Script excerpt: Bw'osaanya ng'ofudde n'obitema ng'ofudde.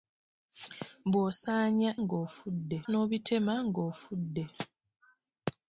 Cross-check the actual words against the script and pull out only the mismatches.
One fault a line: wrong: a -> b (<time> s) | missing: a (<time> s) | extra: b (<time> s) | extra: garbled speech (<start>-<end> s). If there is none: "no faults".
no faults